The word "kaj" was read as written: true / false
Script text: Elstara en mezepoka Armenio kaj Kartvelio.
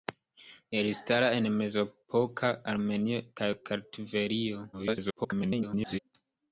true